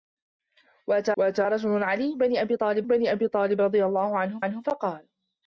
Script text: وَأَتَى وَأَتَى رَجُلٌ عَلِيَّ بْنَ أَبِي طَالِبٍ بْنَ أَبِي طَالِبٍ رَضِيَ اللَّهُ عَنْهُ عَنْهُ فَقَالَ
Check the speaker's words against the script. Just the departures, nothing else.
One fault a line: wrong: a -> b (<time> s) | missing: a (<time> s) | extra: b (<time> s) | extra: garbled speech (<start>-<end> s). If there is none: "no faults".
no faults